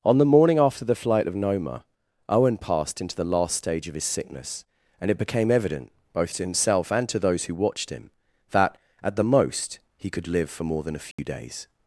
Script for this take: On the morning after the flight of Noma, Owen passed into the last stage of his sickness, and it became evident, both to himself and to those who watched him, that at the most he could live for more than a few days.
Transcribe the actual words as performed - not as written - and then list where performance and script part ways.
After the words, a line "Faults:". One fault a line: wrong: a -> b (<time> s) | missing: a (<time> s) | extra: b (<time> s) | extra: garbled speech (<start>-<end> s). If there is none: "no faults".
On the morning after the flight of Noma, Owen passed into the last stage of his sickness, and it became evident, both to himself and to those who watched him, that at the most he could live for more than a few days.
Faults:
no faults